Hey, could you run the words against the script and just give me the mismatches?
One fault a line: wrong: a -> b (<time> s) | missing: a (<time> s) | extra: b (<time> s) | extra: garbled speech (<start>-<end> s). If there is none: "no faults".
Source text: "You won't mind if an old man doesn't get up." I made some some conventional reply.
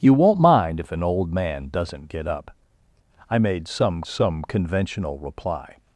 no faults